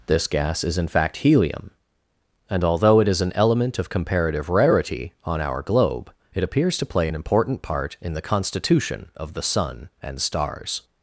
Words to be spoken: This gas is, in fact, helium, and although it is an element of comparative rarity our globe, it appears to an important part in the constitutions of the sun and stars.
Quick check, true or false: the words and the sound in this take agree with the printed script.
false